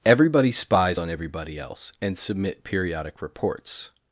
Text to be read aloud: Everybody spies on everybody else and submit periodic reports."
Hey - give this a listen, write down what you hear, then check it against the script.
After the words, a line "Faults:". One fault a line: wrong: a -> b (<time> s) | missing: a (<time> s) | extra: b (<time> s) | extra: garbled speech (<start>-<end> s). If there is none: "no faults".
Everybody spies on everybody else and submit periodic reports."
Faults:
no faults